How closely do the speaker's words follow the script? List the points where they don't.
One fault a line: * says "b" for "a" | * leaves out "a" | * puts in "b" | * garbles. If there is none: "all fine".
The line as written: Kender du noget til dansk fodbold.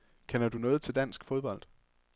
all fine